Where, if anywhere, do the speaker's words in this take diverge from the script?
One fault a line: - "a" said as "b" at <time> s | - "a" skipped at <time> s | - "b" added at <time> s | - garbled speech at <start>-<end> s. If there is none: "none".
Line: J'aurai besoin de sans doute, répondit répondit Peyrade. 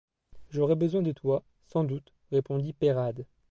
- "toi" added at 1.1 s
- "répondit" skipped at 2.7 s